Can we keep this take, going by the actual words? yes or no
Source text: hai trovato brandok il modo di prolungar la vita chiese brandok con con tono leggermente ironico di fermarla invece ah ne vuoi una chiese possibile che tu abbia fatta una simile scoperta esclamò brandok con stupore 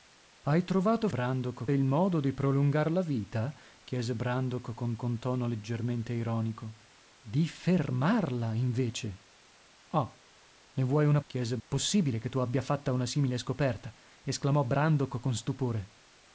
yes